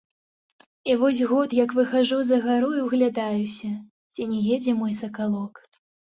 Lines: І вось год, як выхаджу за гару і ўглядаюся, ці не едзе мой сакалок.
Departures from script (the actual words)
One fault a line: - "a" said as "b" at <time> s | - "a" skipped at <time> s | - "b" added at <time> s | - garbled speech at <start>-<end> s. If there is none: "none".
none